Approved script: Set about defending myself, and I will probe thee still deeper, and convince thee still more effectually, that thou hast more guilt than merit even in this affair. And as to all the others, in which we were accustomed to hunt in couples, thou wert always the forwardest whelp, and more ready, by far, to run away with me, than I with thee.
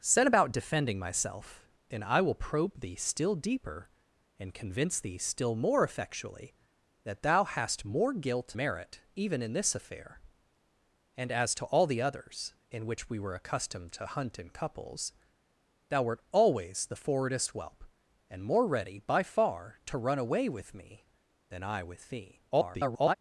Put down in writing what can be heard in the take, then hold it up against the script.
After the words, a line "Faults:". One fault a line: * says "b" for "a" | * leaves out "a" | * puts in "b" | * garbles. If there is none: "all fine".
Set about defending myself, and I will probe thee still deeper, and convince thee still more effectually, that thou hast more guilt merit even in this affair. And as to all the others, in which we were accustomed to hunt in couples, thou wert always the forwardest whelp, and more ready, by far, to run away with me, than I with thee. [garbled]
Faults:
* leaves out "than"
* garbles